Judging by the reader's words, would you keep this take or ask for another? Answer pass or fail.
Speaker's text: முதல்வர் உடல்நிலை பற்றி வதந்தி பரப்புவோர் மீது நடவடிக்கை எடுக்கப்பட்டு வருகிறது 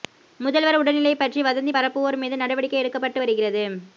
pass